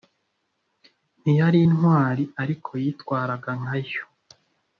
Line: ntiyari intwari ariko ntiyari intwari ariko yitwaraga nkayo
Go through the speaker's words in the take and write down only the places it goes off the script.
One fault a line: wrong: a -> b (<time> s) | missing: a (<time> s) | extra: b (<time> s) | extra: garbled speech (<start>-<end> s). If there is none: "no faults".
missing: ntiyari intwari ariko (2.7 s)